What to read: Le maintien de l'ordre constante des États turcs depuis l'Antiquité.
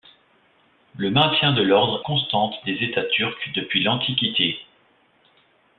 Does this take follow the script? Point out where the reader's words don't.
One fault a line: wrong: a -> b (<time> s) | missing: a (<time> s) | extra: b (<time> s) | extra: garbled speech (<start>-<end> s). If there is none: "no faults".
no faults